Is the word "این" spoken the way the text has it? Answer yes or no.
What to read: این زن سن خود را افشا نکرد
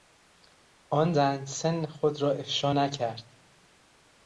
no